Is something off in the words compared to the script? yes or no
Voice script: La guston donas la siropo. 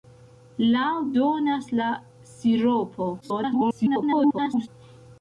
yes